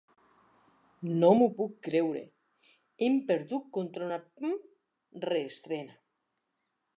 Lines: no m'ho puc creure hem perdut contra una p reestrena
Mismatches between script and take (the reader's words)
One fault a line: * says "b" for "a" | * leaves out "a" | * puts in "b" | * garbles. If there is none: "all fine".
all fine